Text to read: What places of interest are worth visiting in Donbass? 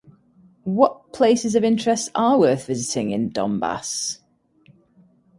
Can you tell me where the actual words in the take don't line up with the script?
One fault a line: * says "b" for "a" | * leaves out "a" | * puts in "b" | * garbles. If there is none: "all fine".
all fine